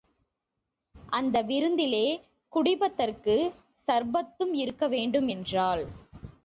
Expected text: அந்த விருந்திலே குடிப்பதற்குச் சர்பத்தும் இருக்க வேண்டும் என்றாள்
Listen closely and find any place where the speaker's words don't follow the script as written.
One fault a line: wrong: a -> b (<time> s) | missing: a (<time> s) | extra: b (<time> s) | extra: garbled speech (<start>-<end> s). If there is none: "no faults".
no faults